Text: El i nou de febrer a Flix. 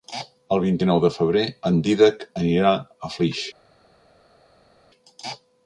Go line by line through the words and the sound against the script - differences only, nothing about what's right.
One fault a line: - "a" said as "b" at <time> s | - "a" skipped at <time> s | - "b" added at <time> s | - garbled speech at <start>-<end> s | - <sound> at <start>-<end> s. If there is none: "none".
- "vint" added at 0.6 s
- "en Dídac anirà" added at 1.7 s